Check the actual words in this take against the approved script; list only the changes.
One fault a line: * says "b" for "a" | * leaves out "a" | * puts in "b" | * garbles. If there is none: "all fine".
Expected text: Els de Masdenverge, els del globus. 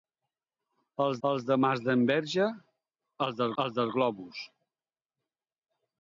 * puts in "els"
* puts in "els del"